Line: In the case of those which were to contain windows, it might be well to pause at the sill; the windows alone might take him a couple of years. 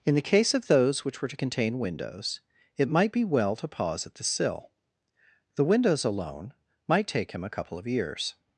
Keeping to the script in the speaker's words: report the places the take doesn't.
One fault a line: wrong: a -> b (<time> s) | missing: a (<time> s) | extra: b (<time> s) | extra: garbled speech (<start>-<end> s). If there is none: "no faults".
no faults